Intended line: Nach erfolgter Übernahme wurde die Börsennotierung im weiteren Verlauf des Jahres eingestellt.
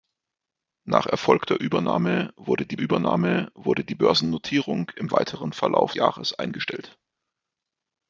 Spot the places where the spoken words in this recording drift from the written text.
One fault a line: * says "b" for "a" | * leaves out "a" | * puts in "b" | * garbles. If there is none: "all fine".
* puts in "Übernahme wurde die"
* leaves out "des"